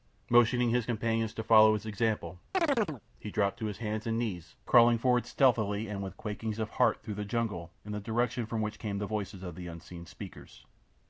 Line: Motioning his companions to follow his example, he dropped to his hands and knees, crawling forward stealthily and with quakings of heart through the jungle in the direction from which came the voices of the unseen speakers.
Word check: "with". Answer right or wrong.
right